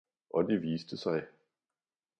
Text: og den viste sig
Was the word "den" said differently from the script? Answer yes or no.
yes